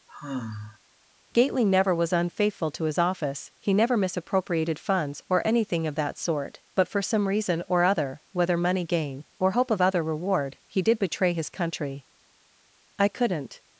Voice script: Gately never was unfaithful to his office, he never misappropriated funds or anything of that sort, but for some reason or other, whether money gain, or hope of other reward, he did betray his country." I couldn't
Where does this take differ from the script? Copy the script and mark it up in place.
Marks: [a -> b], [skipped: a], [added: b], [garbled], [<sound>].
[sigh] Gately never was unfaithful to his office, he never misappropriated funds or anything of that sort, but for some reason or other, whether money gain, or hope of other reward, he did betray his country." I couldn't